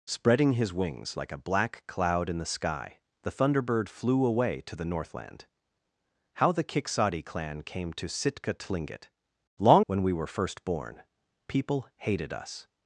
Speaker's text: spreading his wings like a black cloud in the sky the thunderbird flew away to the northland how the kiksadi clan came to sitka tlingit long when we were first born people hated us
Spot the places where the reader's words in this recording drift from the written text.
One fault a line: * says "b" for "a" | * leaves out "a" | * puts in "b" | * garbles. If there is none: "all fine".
all fine